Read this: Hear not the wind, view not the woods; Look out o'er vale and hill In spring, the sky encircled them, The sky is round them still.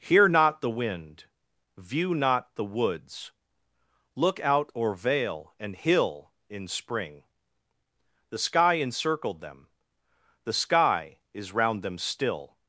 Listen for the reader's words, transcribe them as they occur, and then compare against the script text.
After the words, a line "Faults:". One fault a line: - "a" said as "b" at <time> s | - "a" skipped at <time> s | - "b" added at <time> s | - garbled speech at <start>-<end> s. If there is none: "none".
Hear not the wind, view not the woods; Look out o'er vale and hill In spring, the sky encircled them, The sky is round them still.
Faults:
none